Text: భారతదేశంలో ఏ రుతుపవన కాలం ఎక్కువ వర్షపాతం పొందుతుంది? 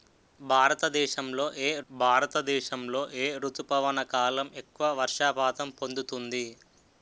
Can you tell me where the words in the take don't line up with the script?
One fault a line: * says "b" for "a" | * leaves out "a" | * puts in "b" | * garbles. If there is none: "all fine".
* puts in "భారతదేశంలో ఏ"